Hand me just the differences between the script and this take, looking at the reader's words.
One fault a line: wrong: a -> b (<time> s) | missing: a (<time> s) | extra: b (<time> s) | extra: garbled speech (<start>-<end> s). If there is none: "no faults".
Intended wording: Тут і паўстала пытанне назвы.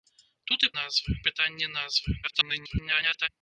wrong: паўстала -> назвы (0.8 s)
extra: garbled speech (2.2-3.3 s)